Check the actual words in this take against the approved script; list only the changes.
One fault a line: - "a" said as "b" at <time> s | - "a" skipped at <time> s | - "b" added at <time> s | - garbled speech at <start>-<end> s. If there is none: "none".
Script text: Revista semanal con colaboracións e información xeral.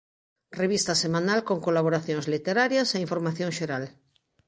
- "literarias" added at 2.3 s